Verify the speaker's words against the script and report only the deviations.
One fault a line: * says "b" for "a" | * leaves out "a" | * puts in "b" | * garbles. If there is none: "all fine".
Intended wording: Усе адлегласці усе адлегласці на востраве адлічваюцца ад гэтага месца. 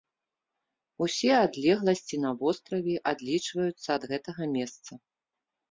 * leaves out "усе адлегласці"